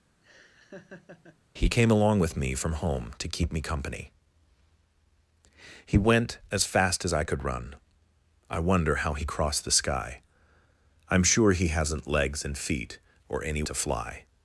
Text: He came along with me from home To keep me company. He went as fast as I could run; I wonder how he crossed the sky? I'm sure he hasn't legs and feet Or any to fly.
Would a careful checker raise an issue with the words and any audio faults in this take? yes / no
yes